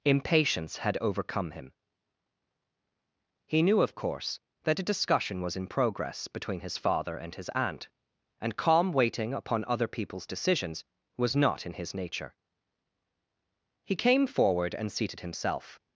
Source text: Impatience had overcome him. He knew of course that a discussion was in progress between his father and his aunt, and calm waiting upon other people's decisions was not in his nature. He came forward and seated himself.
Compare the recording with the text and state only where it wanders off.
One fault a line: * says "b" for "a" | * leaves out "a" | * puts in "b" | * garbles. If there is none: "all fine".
all fine